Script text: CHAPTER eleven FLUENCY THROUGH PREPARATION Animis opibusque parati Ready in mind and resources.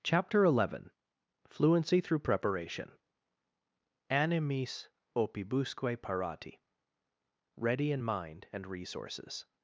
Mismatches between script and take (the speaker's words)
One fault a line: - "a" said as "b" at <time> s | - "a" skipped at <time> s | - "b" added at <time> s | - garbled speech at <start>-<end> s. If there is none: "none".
none